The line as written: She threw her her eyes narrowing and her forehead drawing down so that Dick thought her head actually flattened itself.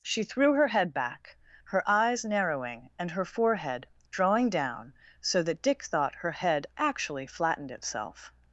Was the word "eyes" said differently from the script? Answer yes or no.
no